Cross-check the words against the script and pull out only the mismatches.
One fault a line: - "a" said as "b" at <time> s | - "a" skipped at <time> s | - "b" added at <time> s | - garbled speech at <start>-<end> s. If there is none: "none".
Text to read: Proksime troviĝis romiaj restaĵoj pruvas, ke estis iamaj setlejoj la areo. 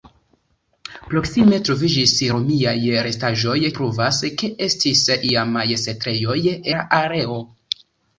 none